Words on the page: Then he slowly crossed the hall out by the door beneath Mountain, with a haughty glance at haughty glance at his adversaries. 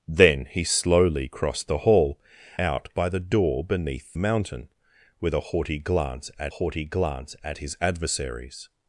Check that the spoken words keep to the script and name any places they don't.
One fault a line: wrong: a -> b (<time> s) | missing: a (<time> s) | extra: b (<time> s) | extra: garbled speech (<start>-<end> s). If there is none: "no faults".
no faults